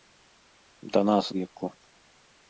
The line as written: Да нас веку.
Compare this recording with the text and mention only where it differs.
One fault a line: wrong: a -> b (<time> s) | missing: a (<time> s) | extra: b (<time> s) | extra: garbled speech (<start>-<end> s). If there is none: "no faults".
no faults